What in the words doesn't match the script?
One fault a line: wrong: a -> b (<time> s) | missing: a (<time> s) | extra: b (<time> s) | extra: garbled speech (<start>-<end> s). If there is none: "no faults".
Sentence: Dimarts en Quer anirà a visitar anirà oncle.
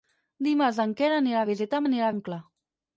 no faults